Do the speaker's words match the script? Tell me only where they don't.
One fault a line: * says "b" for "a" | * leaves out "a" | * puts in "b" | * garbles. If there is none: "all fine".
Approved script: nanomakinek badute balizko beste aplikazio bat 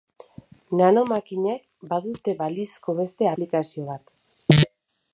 all fine